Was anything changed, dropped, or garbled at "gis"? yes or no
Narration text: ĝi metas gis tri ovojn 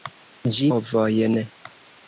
yes